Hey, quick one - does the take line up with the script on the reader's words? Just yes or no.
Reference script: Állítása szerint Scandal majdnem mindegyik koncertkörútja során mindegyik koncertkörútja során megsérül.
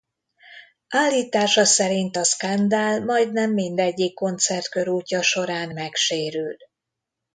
no